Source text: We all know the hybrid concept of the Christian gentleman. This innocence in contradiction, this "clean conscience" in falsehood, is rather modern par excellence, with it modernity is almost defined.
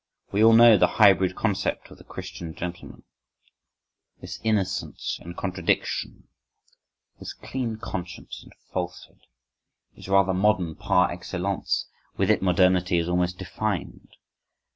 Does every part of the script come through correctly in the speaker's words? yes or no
yes